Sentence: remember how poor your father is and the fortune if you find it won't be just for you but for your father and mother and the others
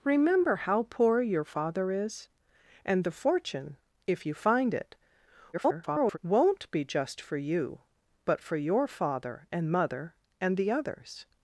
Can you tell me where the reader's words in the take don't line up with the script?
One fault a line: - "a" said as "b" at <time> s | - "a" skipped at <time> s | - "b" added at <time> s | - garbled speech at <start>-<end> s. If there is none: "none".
- garbled speech at 5.5-6.2 s